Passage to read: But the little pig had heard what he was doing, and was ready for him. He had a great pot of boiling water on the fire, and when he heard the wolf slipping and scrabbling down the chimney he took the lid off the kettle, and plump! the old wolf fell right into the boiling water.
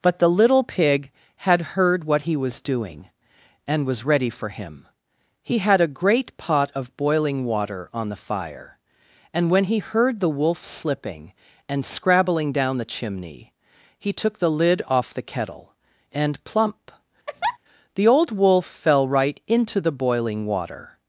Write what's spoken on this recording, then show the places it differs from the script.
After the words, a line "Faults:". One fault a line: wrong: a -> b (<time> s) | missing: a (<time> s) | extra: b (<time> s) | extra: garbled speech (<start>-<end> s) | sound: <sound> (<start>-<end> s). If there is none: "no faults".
But the little pig had heard what he was doing, and was ready for him. He had a great pot of boiling water on the fire, and when he heard the wolf slipping and scrabbling down the chimney he took the lid off the kettle, and plump! the old wolf fell right into the boiling water.
Faults:
sound: laugh (17.3-17.6 s)